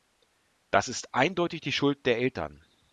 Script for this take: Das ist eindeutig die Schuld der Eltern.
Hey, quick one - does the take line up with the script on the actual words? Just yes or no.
yes